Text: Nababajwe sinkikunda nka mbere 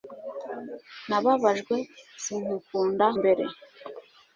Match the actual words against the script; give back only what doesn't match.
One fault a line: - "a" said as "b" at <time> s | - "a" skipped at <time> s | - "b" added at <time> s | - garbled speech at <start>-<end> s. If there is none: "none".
- "nka" skipped at 3.0 s